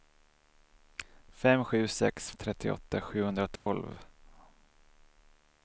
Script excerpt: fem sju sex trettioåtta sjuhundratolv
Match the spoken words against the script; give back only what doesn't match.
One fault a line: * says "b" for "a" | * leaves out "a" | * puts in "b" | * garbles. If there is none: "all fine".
all fine